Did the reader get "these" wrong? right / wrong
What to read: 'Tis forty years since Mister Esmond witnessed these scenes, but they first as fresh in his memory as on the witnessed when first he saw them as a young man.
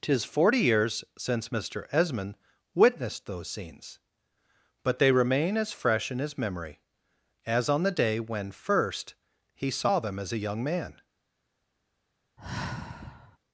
wrong